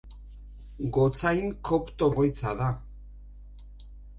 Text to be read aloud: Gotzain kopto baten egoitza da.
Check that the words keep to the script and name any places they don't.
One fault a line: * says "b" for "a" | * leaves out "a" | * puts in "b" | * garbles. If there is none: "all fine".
* leaves out "baten"